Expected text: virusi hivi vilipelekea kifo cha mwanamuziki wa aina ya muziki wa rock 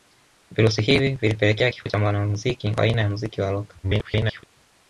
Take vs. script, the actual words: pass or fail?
fail